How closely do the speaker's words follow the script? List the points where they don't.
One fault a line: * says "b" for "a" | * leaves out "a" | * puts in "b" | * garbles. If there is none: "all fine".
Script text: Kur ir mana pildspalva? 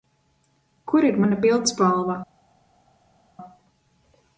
all fine